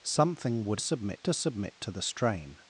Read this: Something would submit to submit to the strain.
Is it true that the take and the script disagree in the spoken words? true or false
false